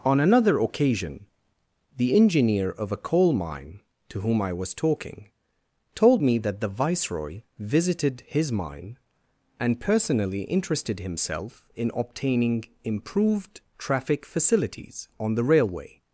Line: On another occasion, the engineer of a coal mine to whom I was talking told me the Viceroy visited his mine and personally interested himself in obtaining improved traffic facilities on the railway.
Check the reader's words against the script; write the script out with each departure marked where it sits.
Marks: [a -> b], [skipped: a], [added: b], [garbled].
On another occasion, the engineer of a coal mine to whom I was talking told me [added: that] the Viceroy visited his mine and personally interested himself in obtaining improved traffic facilities on the railway.